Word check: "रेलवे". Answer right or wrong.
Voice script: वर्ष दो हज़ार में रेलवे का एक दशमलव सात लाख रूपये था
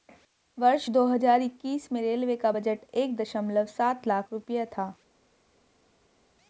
right